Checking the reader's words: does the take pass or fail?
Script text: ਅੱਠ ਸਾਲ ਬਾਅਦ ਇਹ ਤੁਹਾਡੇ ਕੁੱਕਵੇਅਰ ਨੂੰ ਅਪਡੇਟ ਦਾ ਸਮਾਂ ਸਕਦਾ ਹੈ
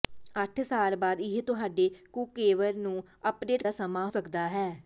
pass